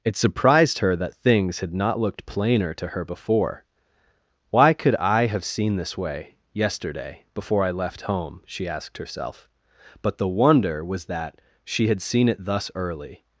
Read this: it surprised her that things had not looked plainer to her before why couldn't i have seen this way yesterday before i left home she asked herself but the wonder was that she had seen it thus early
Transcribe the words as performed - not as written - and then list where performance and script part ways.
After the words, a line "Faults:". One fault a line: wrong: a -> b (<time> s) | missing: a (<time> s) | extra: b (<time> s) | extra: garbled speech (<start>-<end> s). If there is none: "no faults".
it surprised her that things had not looked plainer to her before why could i have seen this way yesterday before i left home she asked herself but the wonder was that she had seen it thus early
Faults:
wrong: couldn't -> could (4.7 s)